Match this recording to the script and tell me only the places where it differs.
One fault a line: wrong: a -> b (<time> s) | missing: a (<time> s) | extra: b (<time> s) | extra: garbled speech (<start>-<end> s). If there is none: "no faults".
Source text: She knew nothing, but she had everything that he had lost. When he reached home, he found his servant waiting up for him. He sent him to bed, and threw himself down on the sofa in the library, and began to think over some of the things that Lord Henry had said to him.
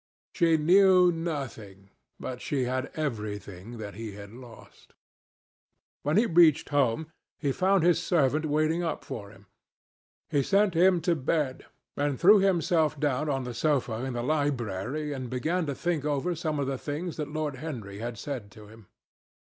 no faults